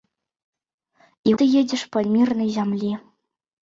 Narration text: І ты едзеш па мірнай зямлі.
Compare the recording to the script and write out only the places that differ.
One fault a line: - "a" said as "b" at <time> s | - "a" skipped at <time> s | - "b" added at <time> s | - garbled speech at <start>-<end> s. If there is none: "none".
none